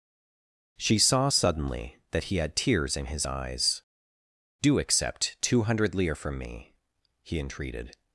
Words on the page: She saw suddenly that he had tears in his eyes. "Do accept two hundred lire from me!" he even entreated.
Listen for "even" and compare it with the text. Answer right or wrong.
wrong